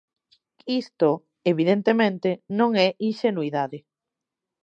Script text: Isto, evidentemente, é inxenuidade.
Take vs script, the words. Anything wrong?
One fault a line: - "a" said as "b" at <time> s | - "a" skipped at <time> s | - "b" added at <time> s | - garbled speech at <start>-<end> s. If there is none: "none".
- "non" added at 2.6 s